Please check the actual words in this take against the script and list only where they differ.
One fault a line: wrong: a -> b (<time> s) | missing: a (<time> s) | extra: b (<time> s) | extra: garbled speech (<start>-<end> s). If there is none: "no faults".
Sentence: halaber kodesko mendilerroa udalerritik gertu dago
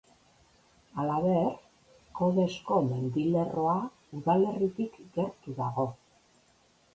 no faults